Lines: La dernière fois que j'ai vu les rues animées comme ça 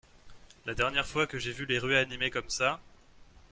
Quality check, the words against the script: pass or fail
pass